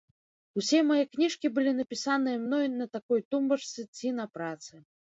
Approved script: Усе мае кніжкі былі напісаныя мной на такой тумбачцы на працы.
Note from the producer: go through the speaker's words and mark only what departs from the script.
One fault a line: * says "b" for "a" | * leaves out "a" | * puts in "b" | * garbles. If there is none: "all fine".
* puts in "ці"